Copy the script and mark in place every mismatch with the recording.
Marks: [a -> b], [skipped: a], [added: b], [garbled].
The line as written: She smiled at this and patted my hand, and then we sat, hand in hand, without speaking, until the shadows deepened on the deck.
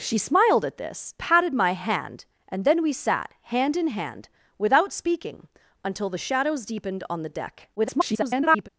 She smiled at this [skipped: and] patted my hand, and then we sat, hand in hand, without speaking, until the shadows deepened on the deck. [garbled]